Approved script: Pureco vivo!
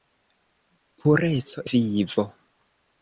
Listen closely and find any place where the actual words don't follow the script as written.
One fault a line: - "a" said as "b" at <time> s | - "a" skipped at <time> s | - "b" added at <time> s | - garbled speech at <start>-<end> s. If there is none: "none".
none